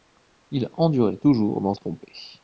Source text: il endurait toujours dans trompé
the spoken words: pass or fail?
pass